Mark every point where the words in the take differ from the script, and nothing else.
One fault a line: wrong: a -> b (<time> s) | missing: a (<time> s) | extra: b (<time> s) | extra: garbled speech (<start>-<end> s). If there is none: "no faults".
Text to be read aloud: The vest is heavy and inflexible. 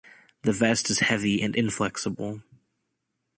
no faults